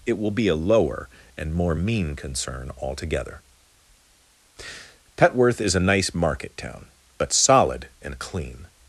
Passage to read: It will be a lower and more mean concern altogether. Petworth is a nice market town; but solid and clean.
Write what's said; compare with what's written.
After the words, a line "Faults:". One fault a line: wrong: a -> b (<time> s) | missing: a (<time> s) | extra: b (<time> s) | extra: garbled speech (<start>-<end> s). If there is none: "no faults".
It will be a lower and more mean concern altogether. Petworth is a nice market town; but solid and clean.
Faults:
no faults